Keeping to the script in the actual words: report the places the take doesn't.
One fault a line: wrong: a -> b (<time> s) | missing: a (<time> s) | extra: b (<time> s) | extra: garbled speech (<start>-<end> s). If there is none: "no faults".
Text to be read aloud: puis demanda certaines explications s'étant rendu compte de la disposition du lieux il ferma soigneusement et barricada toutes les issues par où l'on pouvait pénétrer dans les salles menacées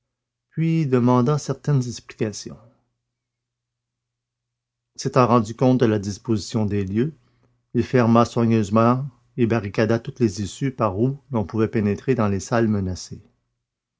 wrong: du -> des (6.7 s)